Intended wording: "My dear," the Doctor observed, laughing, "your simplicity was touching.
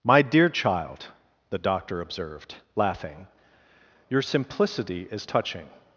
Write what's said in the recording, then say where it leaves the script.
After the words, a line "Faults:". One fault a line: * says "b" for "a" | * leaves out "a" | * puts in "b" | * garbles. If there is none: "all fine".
"My dear child," the Doctor observed, laughing, "your simplicity is touching.
Faults:
* puts in "child"
* says "is" for "was"